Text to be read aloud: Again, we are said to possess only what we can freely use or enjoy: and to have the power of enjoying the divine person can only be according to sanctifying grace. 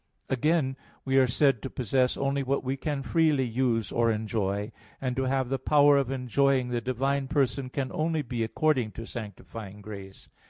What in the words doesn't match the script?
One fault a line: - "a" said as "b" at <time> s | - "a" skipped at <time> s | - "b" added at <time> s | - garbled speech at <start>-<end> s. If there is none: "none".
none